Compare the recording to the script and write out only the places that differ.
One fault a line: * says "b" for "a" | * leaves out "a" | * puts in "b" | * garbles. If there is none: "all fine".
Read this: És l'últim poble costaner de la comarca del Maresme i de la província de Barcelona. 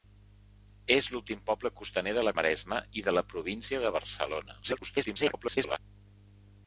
* leaves out "comarca del"
* garbles